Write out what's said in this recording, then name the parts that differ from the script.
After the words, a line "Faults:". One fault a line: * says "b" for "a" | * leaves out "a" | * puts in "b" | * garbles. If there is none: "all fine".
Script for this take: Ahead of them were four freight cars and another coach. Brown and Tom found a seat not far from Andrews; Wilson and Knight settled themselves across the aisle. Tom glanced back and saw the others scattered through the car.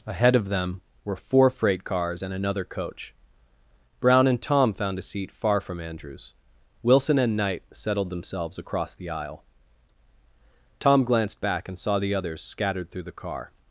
Ahead of them were four freight cars and another coach. Brown and Tom found a seat far from Andrews; Wilson and Knight settled themselves across the aisle. Tom glanced back and saw the others scattered through the car.
Faults:
* leaves out "not"